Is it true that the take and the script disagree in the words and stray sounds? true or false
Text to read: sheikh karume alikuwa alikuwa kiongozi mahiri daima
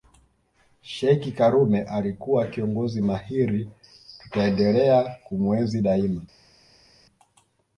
true